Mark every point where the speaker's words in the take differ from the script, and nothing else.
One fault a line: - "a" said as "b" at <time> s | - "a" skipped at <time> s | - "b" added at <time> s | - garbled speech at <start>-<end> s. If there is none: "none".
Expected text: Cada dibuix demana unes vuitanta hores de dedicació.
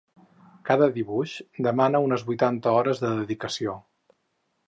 none